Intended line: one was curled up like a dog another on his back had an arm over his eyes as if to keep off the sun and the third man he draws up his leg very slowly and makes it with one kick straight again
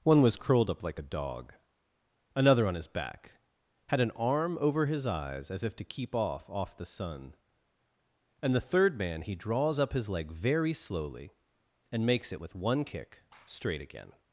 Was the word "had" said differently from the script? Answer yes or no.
no